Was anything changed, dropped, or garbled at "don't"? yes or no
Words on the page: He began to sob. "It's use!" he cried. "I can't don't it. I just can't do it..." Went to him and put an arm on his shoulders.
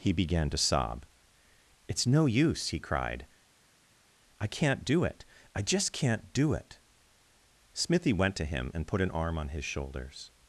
yes